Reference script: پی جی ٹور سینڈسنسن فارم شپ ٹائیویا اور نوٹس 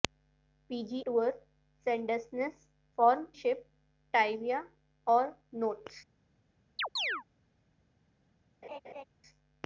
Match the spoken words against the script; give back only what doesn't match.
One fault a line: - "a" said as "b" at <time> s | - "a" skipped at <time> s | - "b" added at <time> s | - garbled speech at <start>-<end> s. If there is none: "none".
none